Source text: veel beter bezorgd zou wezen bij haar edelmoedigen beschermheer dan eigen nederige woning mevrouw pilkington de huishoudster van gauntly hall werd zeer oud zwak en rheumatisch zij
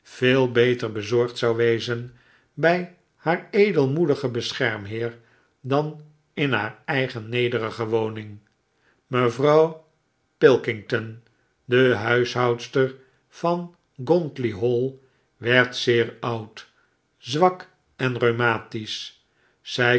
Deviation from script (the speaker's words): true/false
true